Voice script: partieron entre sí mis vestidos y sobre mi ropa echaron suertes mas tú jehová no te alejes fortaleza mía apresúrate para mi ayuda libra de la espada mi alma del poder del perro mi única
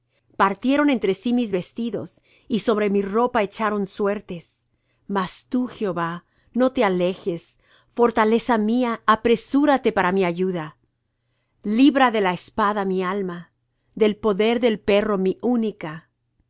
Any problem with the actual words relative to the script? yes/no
no